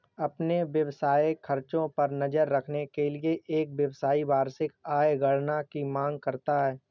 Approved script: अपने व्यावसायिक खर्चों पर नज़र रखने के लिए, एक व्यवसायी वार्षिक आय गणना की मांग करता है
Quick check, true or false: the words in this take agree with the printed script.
true